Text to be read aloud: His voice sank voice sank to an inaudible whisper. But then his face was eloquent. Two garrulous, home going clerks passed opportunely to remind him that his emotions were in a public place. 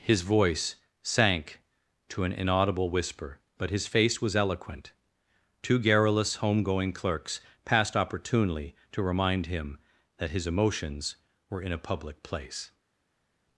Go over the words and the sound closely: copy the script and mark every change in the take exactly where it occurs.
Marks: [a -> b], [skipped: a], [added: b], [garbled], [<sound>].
His voice sank [skipped: voice sank] to an inaudible whisper. But [skipped: then] his face was eloquent. Two garrulous, home going clerks passed opportunely to remind him that his emotions were in a public place.